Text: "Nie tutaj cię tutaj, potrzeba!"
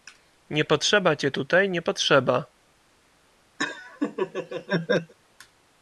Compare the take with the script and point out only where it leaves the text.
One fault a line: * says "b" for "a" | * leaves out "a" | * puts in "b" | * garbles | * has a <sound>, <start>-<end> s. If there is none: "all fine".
* says "potrzeba" for "tutaj"
* puts in "nie"
* has a laugh, 3.6-5.1 s